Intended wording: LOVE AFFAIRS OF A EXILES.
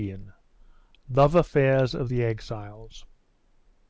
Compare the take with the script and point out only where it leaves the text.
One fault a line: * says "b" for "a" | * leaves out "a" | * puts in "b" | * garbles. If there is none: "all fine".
* says "THE" for "A"